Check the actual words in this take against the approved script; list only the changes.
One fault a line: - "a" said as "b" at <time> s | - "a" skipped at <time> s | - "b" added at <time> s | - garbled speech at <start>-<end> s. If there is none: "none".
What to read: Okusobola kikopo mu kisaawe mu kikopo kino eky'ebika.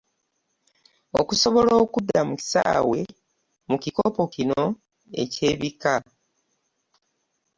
- "kikopo" said as "okudda" at 1.8 s